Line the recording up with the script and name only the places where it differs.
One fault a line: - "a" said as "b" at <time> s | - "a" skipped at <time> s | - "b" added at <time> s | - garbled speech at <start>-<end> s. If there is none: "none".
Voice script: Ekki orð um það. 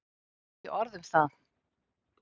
none